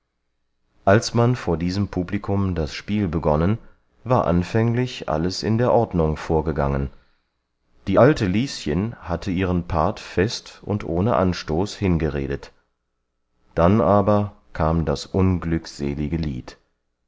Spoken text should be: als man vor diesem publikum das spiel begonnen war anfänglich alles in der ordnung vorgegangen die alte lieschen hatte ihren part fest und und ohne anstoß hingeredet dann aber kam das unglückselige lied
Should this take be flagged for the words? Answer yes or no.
yes